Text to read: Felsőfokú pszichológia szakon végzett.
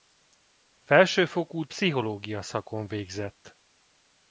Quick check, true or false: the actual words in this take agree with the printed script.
true